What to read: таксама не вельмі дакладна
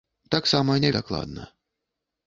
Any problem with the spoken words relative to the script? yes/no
yes